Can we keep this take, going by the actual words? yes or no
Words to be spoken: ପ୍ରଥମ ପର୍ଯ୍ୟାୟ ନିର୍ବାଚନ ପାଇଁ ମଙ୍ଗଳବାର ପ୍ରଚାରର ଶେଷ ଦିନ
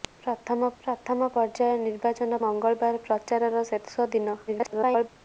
no